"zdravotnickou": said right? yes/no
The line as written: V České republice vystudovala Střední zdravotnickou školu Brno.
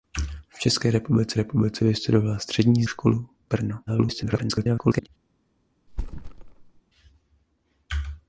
no